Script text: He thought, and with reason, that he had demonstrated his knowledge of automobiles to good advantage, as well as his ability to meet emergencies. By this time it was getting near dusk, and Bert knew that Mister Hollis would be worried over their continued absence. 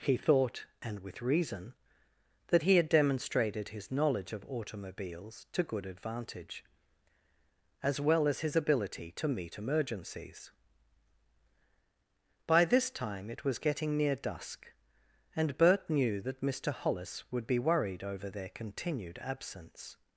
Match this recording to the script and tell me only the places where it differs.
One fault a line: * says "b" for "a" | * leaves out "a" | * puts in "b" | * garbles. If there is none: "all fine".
all fine